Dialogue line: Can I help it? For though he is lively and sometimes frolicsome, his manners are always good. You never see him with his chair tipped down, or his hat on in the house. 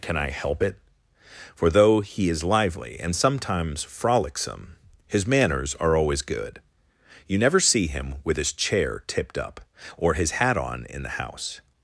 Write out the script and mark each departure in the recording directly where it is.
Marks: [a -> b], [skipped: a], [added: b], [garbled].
Can I help it? For though he is lively and sometimes frolicsome, his manners are always good. You never see him with his chair tipped [down, -> up] or his hat on in the house.